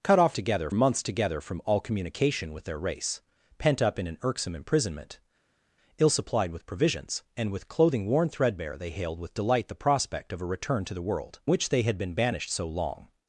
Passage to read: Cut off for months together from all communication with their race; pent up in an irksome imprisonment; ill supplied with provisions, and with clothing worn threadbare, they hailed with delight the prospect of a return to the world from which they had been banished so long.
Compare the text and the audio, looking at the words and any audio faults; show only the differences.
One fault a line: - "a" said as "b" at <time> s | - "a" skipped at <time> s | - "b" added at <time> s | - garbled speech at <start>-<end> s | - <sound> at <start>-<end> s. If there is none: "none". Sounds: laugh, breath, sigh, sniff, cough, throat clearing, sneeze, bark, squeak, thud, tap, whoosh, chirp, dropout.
- "for" said as "together" at 0.3 s
- "from" skipped at 11.4 s